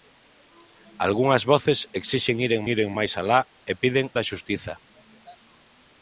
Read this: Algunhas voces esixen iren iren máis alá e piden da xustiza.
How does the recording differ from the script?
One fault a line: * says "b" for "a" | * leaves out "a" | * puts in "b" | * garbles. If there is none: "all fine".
all fine